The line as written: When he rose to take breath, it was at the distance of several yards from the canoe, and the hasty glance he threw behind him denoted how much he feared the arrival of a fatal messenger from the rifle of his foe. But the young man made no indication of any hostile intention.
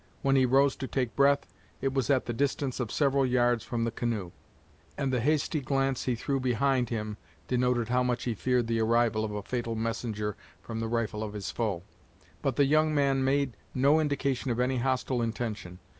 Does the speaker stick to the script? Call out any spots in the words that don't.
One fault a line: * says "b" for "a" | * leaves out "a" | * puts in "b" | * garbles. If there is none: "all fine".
all fine